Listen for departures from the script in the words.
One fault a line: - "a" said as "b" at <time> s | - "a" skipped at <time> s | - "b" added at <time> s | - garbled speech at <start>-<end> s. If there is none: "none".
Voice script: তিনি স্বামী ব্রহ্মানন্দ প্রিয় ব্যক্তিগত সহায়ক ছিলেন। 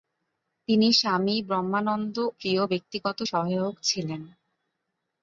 none